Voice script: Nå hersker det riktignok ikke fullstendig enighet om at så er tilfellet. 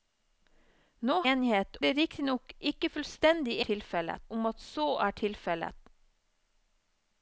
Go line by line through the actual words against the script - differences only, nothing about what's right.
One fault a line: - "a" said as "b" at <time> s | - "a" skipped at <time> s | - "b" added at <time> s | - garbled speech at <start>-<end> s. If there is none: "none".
- "hersker" said as "enighet" at 1.3 s
- "enighet" said as "tilfellet" at 3.7 s